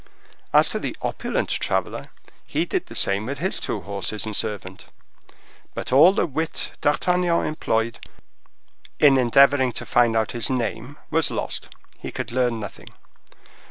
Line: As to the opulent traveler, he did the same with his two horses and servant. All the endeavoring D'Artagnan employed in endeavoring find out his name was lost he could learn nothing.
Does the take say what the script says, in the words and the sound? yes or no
no